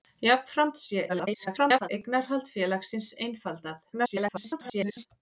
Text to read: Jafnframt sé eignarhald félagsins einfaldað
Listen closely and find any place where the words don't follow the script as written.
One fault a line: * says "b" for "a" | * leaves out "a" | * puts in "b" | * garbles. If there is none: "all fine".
* garbles
* garbles